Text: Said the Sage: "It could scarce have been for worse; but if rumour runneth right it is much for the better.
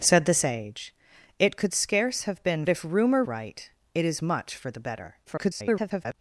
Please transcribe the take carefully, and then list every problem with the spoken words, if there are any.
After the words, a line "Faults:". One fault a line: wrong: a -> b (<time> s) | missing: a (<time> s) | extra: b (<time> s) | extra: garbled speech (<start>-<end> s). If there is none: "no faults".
Said the Sage: "It could scarce have been if rumour right it is much for the better. [garbled]
Faults:
missing: for worse but (2.6 s)
missing: runneth (3.2 s)
extra: garbled speech (5.3-6.1 s)